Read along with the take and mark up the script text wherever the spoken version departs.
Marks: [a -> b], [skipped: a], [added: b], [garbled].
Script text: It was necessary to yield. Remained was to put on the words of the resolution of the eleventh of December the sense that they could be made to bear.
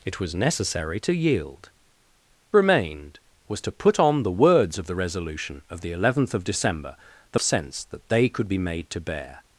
It was necessary to yield. Remained was to put on the words of the resolution of the eleventh of December the sense that they could be made to bear.